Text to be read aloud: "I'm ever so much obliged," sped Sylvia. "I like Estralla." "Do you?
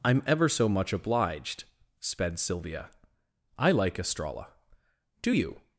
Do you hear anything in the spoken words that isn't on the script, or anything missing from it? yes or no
no